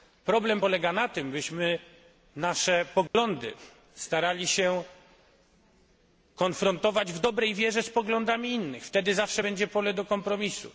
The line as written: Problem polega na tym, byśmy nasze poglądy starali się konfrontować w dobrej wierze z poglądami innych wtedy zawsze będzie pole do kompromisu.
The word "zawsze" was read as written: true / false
true